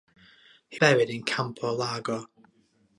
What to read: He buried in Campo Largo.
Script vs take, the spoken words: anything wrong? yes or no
no